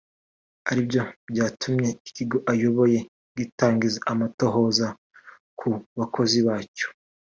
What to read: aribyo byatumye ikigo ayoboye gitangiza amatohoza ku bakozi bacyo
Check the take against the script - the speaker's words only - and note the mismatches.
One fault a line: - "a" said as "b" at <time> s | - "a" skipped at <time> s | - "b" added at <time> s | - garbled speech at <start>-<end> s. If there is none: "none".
none